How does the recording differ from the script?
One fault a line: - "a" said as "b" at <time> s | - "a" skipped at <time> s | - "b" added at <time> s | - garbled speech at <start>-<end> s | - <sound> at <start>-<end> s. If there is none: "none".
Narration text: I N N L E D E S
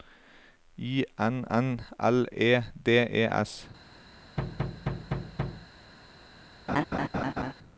- thud at 4.4-5.7 s
- laugh at 6.7-7.5 s